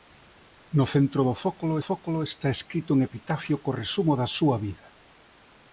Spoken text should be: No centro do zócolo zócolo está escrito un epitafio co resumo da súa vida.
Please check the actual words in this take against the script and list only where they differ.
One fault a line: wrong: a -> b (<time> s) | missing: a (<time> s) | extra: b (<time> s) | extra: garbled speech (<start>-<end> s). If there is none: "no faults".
no faults